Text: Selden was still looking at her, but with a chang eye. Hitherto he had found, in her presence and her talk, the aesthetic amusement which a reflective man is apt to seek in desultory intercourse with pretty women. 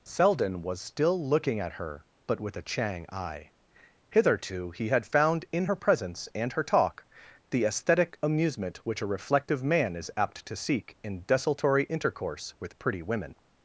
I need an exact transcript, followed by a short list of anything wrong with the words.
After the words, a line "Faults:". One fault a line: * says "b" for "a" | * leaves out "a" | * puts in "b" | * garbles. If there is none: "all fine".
Selden was still looking at her, but with a chang eye. Hitherto he had found, in her presence and her talk, the aesthetic amusement which a reflective man is apt to seek in desultory intercourse with pretty women.
Faults:
all fine